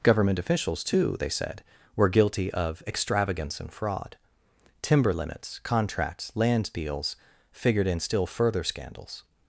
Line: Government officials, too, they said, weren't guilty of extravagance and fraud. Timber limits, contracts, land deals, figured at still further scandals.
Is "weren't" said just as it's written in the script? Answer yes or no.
no